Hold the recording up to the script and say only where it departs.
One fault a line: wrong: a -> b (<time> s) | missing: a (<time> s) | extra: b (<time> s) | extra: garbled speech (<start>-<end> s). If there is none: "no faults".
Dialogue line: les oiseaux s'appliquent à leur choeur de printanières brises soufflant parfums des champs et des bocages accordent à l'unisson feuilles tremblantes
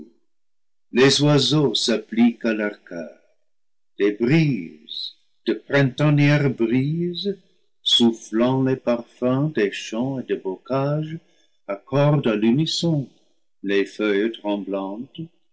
extra: des brises (4.0 s)
extra: les (8.6 s)
extra: les (13.6 s)